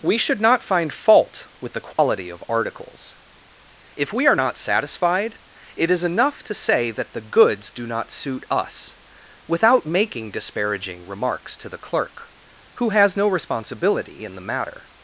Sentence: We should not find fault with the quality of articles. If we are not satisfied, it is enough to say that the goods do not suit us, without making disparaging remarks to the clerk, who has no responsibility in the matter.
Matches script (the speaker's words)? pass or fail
pass